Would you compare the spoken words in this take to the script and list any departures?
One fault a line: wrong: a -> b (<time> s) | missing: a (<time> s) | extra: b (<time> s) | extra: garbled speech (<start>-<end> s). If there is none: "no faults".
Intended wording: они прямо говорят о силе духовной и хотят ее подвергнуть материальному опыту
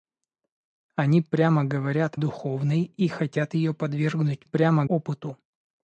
missing: о силе (2.1 s)
wrong: материальному -> прямо (4.4 s)